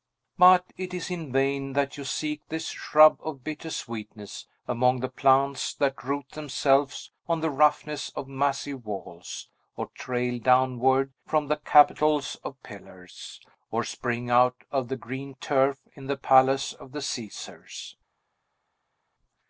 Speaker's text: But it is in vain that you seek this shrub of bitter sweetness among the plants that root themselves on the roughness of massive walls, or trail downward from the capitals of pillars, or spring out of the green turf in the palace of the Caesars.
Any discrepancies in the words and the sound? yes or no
no